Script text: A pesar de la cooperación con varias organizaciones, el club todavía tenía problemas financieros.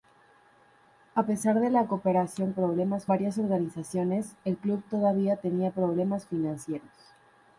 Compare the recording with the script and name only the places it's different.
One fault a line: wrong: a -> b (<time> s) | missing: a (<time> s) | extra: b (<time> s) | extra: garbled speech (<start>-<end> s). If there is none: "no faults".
wrong: con -> problemas (2.5 s)